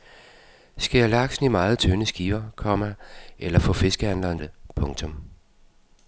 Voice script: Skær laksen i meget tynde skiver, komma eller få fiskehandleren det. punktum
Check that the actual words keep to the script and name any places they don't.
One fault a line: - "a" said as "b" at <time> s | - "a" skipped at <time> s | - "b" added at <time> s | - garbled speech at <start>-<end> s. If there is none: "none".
none